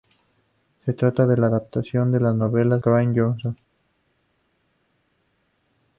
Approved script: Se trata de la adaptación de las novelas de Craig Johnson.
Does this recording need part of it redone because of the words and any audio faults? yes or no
yes